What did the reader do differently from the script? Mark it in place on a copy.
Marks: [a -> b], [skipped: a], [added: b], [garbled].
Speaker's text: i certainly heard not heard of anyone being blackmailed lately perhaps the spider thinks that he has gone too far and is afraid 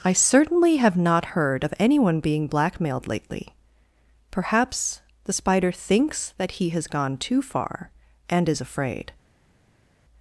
i certainly [heard -> have] not heard of anyone being blackmailed lately perhaps the spider thinks that he has gone too far and is afraid